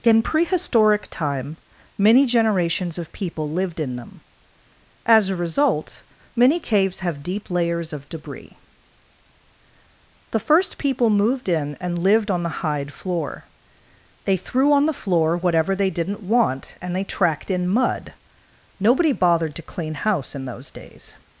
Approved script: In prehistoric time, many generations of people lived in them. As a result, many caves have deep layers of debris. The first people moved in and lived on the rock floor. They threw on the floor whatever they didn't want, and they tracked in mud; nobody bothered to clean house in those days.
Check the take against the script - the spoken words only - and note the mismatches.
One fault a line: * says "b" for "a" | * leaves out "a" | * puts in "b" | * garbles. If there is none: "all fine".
* says "hide" for "rock"